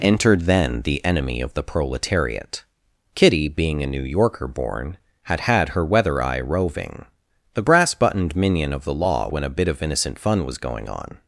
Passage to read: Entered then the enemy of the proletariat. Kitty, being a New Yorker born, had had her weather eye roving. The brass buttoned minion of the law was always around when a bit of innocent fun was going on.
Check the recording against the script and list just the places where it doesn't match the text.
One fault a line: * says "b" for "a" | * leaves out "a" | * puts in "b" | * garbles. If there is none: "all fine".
* leaves out "was always around"